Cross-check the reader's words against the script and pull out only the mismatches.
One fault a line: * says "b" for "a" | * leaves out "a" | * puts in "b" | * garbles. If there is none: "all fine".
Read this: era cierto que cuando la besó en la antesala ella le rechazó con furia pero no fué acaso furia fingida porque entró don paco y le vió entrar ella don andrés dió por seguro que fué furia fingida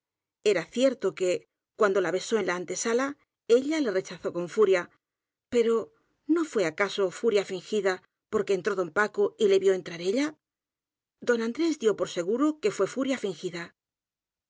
all fine